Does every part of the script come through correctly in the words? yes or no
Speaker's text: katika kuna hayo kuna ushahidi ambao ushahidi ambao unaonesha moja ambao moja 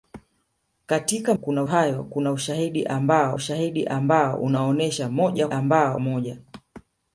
yes